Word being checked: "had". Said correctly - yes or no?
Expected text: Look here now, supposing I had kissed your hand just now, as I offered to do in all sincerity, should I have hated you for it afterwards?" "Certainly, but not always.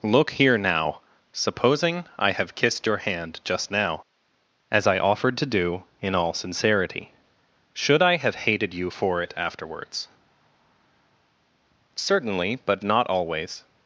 no